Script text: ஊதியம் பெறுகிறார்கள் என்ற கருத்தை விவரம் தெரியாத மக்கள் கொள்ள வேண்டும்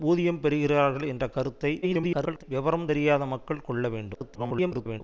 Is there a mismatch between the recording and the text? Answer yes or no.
yes